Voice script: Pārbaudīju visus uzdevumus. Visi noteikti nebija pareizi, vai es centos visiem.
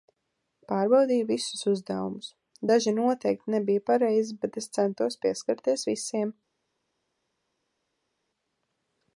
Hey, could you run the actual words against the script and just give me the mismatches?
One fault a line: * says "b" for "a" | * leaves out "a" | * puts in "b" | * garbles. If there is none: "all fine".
* says "Daži" for "Visi"
* says "bet" for "vai"
* puts in "pieskarties"